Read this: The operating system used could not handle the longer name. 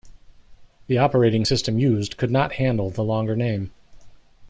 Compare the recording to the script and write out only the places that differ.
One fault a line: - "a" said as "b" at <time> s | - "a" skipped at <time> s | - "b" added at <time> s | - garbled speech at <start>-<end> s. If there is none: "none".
none